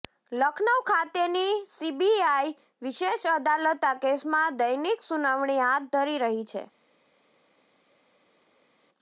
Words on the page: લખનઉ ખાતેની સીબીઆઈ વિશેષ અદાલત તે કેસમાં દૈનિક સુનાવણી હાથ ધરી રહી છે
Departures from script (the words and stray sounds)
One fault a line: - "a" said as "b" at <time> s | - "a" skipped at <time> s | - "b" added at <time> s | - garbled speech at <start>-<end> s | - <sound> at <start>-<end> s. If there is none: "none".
- "તે" said as "આ" at 3.8 s